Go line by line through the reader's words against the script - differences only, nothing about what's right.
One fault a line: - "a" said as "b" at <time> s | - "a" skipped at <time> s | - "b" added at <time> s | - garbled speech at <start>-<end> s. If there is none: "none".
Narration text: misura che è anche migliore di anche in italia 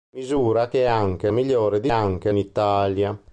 none